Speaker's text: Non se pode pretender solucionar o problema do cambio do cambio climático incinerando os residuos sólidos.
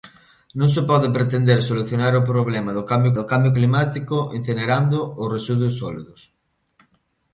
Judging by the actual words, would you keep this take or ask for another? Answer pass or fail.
pass